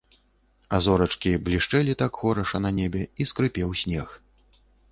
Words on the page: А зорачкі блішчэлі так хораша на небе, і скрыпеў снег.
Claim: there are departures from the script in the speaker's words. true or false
false